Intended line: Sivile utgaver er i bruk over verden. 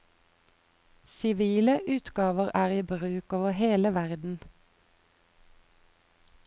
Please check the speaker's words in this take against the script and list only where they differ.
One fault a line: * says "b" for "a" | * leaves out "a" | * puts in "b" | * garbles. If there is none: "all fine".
* puts in "hele"